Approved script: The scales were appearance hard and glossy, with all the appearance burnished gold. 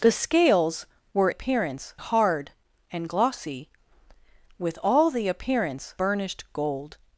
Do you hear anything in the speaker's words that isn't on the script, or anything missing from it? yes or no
no